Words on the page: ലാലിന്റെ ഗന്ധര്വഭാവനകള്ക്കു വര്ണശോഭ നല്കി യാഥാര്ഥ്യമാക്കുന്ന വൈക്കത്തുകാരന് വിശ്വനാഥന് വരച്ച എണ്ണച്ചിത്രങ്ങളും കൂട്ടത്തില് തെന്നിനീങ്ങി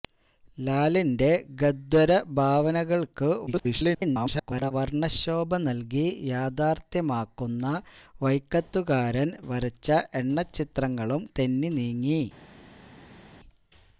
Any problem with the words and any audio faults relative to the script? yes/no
yes